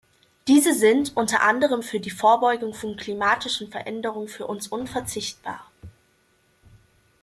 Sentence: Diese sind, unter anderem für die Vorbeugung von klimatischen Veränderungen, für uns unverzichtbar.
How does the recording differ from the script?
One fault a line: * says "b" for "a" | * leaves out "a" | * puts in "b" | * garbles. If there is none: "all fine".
all fine